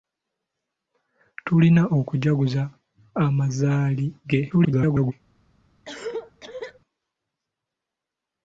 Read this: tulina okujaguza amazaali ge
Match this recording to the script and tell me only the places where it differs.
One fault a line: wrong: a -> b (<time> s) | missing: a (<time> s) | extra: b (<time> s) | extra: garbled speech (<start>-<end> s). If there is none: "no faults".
extra: garbled speech (4.5-5.1 s)